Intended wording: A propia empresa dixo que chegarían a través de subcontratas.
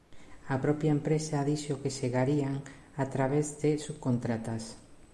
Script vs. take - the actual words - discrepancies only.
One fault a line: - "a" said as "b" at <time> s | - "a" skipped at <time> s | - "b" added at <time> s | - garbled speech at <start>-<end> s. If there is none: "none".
none